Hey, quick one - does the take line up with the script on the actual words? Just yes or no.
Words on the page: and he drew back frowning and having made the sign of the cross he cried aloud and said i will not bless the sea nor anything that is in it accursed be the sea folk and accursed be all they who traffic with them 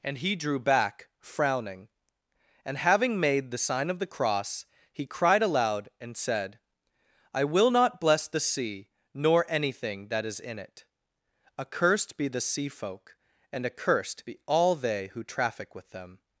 yes